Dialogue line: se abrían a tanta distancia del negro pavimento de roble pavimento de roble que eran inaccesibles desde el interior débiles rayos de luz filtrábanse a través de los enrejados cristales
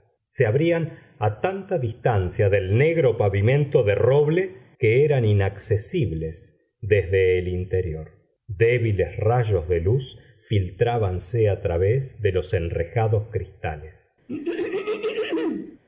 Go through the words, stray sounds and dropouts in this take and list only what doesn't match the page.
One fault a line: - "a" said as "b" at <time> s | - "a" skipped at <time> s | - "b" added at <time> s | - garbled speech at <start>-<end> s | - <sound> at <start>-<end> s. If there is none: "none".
- "pavimento de roble" skipped at 4.6 s
- throat clearing at 14.3-15.8 s